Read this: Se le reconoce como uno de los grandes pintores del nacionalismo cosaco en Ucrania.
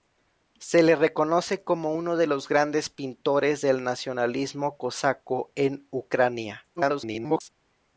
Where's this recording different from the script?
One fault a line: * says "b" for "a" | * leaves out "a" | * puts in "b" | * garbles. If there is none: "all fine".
* garbles